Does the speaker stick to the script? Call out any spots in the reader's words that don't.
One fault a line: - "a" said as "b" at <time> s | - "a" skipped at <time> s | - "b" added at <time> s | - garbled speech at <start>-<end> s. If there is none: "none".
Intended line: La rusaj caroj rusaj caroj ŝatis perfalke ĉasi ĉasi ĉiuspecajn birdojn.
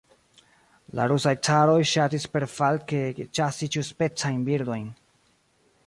- "rusaj caroj" skipped at 1.8 s
- "ĉasi" skipped at 3.7 s